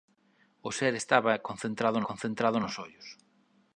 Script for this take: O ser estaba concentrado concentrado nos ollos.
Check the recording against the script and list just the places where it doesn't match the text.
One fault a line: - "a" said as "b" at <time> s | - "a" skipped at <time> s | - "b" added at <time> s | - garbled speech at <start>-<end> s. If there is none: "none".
none